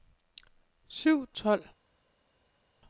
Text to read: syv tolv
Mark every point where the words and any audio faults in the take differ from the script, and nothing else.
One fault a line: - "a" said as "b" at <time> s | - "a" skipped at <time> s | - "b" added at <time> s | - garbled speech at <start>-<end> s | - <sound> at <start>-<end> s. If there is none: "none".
none